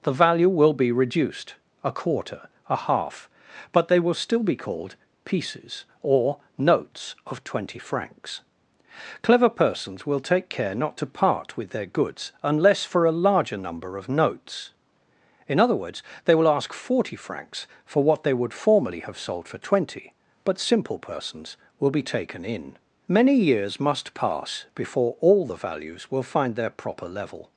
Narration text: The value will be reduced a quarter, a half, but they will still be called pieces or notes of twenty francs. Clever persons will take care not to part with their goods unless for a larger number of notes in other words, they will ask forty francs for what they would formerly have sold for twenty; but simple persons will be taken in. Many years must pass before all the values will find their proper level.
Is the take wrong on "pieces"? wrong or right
right